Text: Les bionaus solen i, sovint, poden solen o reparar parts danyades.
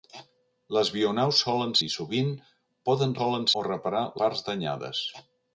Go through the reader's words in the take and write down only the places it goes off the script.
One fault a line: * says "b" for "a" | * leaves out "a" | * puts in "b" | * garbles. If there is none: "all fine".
all fine